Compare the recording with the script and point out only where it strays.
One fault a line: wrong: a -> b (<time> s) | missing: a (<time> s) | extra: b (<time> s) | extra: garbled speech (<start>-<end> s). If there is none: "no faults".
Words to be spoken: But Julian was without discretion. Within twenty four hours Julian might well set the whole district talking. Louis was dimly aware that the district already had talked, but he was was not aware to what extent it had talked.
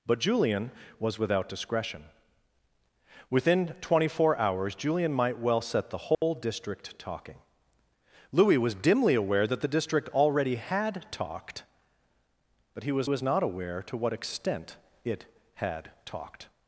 no faults